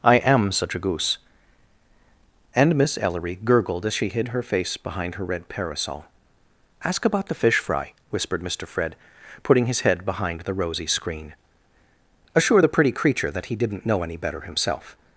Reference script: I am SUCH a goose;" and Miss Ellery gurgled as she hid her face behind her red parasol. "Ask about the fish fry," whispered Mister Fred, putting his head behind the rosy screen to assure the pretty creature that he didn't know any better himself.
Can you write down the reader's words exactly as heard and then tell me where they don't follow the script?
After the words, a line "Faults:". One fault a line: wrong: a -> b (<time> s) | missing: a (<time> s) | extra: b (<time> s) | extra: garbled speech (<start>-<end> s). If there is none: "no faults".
I am SUCH a goose;" and Miss Ellery gurgled as she hid her face behind her red parasol. "Ask about the fish fry," whispered Mister Fred, putting his head behind the rosy screen assure the pretty creature that he didn't know any better himself.
Faults:
missing: to (11.3 s)